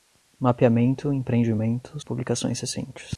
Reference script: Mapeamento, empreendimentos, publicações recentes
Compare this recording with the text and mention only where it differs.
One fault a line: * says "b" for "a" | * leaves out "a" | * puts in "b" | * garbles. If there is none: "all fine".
all fine